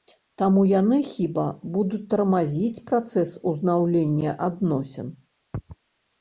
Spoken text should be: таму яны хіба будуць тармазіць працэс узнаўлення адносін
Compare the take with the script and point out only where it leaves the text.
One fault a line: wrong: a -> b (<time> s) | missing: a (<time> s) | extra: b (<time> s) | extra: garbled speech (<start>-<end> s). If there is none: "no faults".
no faults